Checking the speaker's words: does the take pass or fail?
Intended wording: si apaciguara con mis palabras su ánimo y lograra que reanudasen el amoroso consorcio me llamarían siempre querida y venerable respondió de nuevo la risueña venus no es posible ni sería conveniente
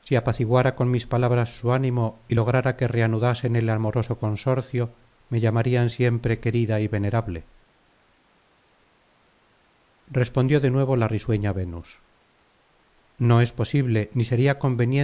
pass